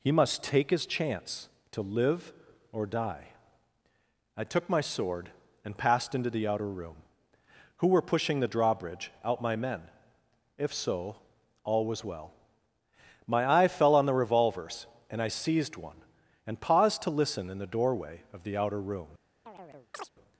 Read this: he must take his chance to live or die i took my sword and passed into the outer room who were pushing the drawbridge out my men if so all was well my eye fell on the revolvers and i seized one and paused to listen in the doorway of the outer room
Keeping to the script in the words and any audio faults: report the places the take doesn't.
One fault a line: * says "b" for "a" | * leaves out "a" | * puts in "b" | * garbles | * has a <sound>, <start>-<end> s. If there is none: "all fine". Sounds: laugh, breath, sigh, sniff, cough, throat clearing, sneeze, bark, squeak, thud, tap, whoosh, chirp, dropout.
* has a chirp, 19.5-20.1 s